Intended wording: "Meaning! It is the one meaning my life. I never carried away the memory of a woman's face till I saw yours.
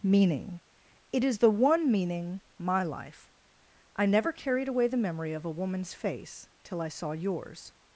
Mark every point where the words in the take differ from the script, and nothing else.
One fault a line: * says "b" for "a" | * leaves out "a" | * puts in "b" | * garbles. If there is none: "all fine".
all fine